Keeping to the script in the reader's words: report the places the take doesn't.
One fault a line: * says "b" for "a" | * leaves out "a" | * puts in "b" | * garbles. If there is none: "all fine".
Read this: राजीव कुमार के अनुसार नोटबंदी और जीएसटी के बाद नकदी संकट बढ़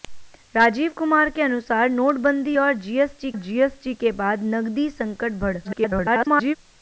* puts in "जीएसटी"
* garbles